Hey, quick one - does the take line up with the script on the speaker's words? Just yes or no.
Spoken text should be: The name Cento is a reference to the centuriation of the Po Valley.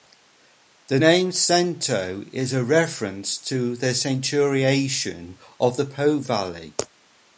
yes